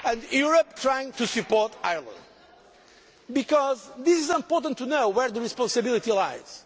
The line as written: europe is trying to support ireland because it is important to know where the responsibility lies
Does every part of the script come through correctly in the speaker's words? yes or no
no